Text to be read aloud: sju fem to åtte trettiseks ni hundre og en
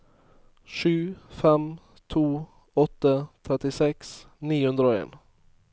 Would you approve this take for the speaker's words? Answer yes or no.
yes